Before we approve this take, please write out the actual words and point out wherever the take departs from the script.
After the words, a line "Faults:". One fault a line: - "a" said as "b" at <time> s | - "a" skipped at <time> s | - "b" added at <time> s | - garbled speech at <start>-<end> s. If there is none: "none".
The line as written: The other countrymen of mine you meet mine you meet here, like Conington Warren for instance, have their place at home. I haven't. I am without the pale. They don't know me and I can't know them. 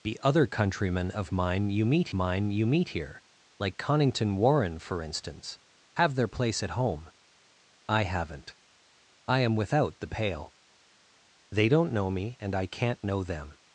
The other countrymen of mine you meet mine you meet here, like Conington Warren for instance, have their place at home. I haven't. I am without the pale. They don't know me and I can't know them.
Faults:
none